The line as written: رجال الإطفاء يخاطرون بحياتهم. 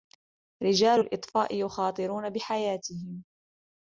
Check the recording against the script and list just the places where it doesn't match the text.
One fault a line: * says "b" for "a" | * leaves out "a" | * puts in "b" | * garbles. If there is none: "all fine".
all fine